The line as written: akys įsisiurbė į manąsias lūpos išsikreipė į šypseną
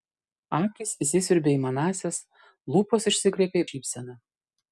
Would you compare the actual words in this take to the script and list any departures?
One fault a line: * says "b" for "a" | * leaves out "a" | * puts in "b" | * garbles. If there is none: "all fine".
all fine